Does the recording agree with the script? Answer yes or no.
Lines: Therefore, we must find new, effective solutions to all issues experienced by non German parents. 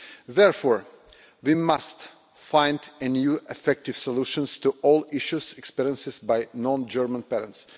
yes